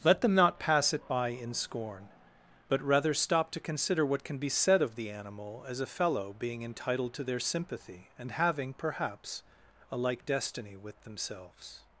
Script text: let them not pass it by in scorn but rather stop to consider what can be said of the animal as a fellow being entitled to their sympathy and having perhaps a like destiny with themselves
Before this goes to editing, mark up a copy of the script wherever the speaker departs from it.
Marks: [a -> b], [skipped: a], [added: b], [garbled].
let them not pass it by in scorn but rather stop to consider what can be said of the animal as a fellow being entitled to their sympathy and having perhaps a like destiny with themselves